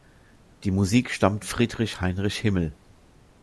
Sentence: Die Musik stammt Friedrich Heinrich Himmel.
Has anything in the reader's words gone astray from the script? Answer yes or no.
no